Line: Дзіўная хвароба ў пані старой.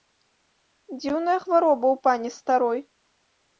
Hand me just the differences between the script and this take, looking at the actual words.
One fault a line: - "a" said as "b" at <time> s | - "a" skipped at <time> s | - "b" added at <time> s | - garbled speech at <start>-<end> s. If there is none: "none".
none